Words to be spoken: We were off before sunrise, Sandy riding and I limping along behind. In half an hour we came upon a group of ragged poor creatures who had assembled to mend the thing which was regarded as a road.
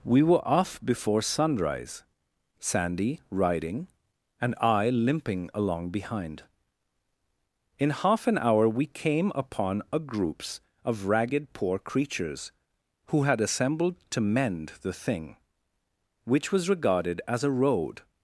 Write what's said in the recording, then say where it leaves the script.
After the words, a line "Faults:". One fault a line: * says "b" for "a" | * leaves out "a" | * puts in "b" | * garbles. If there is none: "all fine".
We were off before sunrise, Sandy riding and I limping along behind. In half an hour we came upon a groups of ragged poor creatures who had assembled to mend the thing which was regarded as a road.
Faults:
* says "groups" for "group"